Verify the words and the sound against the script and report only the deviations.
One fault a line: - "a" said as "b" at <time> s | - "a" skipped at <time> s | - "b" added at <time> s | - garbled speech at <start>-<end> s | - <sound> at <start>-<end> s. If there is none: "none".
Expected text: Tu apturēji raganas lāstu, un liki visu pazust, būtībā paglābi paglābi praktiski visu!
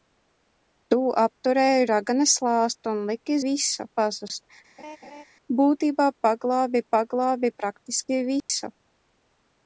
- laugh at 4.8-5.2 s
- dropout at 8.4-8.5 s